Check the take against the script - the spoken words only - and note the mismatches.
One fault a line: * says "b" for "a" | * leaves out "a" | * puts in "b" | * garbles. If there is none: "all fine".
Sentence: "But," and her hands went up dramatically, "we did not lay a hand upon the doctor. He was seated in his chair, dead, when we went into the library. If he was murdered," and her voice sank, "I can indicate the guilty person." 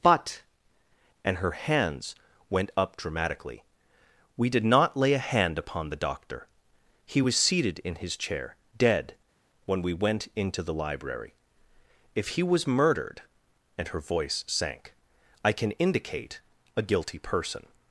* says "a" for "the"